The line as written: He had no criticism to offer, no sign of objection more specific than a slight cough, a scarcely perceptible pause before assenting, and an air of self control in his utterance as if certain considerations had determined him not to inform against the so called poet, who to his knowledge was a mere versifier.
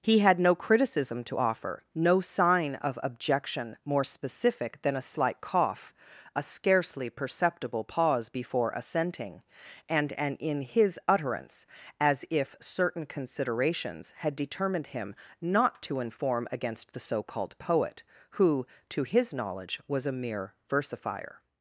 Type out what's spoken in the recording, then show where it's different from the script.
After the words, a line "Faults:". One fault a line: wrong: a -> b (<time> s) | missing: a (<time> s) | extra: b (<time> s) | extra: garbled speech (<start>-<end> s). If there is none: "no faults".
He had no criticism to offer, no sign of objection more specific than a slight cough, a scarcely perceptible pause before assenting, and an in his utterance as if certain considerations had determined him not to inform against the so called poet, who to his knowledge was a mere versifier.
Faults:
missing: air of self control (10.4 s)